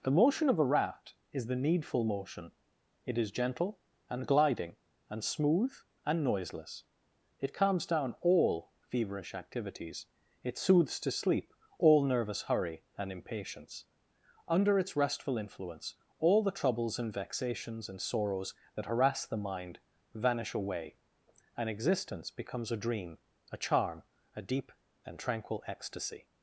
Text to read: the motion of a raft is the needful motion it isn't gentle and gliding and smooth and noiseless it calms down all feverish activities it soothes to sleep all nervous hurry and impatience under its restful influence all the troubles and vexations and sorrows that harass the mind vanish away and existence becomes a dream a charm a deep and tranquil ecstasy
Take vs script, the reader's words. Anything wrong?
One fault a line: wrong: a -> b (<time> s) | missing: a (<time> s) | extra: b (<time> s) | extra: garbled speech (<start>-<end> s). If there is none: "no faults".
wrong: isn't -> is (3.2 s)